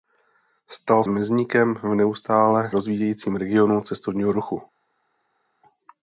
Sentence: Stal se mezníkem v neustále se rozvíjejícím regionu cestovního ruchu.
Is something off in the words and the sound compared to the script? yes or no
yes